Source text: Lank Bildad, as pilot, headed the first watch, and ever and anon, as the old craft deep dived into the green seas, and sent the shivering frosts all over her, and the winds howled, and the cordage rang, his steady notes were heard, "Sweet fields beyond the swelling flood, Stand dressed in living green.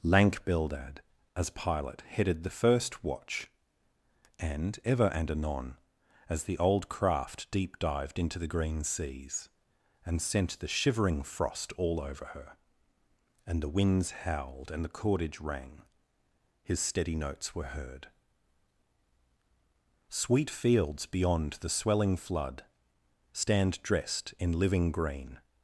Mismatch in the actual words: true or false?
true